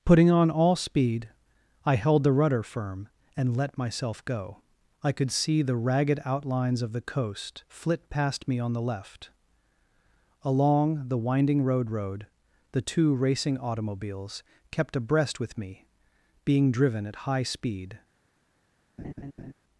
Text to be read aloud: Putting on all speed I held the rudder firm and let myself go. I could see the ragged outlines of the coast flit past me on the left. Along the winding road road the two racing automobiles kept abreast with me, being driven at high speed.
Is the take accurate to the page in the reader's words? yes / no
yes